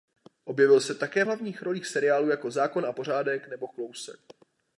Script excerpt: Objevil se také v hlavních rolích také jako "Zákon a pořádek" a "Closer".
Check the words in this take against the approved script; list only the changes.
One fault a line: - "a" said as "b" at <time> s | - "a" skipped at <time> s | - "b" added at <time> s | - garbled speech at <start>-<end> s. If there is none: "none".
- "také" said as "seriálů" at 1.9 s
- "a" said as "nebo" at 3.5 s